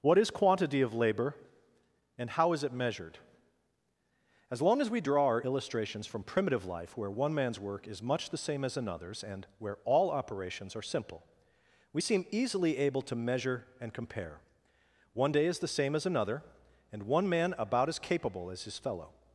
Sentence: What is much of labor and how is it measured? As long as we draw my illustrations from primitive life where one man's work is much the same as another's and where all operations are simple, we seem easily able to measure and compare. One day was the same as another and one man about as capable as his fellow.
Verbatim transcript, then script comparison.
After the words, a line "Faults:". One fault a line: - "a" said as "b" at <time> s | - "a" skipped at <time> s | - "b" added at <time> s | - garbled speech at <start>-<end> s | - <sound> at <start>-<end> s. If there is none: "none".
What is quantity of labor and how is it measured? As long as we draw our illustrations from primitive life where one man's work is much the same as another's and where all operations are simple, we seem easily able to measure and compare. One day is the same as another and one man about as capable as his fellow.
Faults:
- "much" said as "quantity" at 0.3 s
- "my" said as "our" at 5.3 s
- "was" said as "is" at 15.5 s